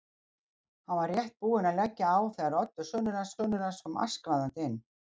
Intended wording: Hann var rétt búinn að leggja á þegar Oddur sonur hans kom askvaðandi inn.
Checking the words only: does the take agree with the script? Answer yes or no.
no